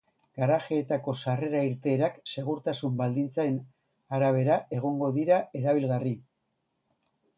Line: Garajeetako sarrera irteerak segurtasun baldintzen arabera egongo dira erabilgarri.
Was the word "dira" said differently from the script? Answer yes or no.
no